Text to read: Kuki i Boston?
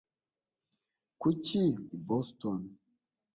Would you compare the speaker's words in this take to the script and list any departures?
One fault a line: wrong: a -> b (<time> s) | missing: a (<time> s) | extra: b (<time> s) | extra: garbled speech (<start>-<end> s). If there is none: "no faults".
no faults